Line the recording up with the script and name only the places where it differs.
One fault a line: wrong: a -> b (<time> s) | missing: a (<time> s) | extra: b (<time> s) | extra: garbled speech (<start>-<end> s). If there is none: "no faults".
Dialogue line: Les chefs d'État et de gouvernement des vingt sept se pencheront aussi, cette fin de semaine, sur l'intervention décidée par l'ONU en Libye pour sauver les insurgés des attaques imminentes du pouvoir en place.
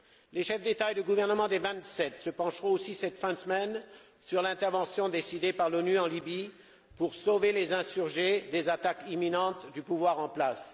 no faults